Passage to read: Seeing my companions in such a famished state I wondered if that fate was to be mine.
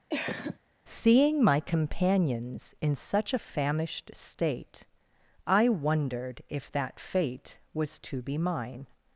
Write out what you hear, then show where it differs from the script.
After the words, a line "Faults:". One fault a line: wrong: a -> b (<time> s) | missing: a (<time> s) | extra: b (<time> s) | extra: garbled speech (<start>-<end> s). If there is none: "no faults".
Seeing my companions in such a famished state I wondered if that fate was to be mine.
Faults:
no faults